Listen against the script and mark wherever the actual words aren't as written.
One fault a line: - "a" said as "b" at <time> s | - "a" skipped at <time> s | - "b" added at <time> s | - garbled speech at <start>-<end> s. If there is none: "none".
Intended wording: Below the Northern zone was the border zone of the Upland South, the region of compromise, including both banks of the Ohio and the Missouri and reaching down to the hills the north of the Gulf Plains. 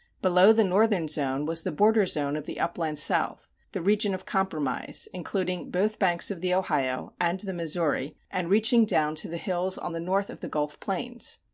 - "on" added at 9.8 s